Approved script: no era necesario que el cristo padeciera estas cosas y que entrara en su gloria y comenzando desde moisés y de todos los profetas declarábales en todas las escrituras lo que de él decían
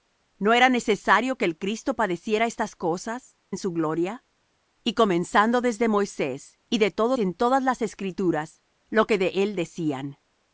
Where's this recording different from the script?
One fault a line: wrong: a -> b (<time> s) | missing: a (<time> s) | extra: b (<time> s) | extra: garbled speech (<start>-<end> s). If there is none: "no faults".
missing: y que entrara (3.4 s)
missing: los profetas declarábales (7.2 s)